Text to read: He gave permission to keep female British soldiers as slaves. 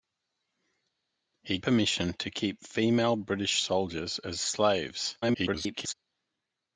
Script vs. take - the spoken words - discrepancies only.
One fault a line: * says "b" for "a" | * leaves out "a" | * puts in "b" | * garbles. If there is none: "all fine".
* leaves out "gave"
* garbles